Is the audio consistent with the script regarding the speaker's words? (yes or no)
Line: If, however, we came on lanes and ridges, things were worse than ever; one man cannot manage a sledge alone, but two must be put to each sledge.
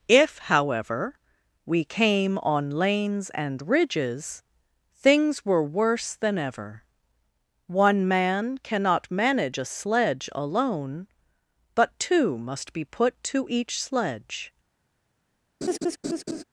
yes